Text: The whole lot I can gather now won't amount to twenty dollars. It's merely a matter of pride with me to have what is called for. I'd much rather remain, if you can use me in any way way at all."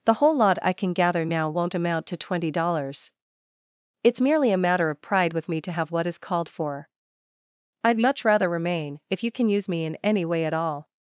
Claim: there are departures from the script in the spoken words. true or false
true